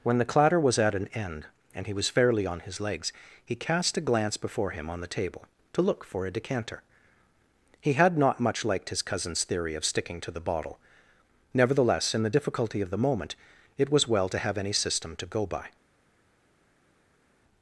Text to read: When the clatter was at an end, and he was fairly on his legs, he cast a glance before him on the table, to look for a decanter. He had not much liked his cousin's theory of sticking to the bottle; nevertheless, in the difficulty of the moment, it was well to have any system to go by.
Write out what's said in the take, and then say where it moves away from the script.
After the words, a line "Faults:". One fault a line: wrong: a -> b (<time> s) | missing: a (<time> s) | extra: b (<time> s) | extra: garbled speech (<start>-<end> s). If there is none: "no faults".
When the clatter was at an end, and he was fairly on his legs, he cast a glance before him on the table, to look for a decanter. He had not much liked his cousin's theory of sticking to the bottle; nevertheless, in the difficulty of the moment, it was well to have any system to go by.
Faults:
no faults